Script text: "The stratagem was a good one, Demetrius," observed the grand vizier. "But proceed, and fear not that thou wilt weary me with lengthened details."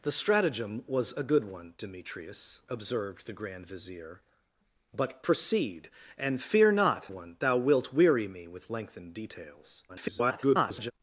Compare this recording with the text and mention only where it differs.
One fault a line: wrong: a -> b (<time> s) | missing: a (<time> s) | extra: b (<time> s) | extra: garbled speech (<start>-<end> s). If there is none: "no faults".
wrong: that -> one (7.1 s)
extra: garbled speech (9.9-10.9 s)